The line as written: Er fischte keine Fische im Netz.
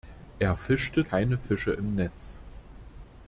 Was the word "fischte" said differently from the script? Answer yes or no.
no